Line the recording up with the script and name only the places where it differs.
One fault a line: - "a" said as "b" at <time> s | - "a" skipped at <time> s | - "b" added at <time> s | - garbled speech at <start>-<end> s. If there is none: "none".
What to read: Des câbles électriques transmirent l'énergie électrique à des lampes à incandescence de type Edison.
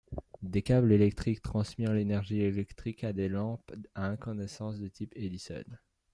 none